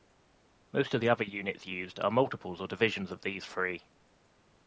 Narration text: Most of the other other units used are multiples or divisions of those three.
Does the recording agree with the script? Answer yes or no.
no